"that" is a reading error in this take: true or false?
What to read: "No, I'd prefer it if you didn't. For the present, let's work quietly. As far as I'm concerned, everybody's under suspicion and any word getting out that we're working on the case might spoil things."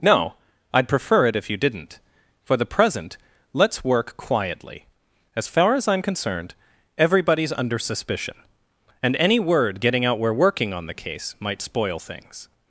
true